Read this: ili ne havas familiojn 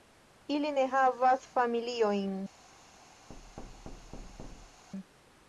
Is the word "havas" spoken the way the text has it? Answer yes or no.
yes